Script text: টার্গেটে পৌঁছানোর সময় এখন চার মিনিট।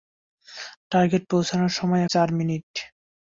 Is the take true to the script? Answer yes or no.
no